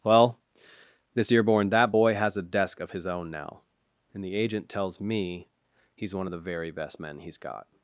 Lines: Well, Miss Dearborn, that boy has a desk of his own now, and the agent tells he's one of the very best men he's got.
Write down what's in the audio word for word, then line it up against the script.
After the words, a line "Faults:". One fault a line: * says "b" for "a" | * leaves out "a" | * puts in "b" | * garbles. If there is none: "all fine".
Well, Miss Dearborn, that boy has a desk of his own now, and the agent tells me he's one of the very best men he's got.
Faults:
* puts in "me"